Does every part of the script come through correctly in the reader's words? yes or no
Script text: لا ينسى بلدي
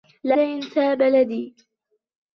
yes